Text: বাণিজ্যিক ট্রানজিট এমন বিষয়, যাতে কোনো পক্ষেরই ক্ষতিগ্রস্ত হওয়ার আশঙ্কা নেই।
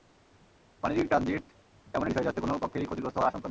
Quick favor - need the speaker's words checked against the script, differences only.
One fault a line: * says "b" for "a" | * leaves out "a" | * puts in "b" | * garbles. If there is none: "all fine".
all fine